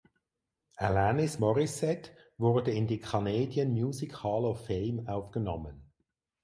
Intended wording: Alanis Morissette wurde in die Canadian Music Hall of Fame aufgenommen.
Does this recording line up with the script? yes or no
yes